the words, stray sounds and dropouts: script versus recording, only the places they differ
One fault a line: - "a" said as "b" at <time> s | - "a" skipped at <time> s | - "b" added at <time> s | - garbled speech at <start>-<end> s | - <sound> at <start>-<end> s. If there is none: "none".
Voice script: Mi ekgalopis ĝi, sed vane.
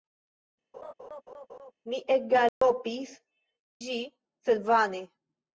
- laugh at 0.7-1.7 s
- dropout at 2.5-2.6 s